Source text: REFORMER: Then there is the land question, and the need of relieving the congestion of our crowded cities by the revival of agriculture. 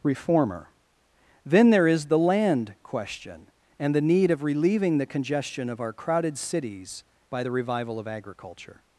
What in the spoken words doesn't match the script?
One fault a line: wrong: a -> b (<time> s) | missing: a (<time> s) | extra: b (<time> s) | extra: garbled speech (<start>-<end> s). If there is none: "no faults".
no faults